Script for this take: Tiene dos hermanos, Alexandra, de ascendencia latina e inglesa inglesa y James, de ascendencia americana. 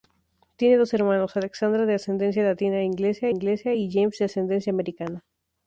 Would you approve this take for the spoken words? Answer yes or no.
yes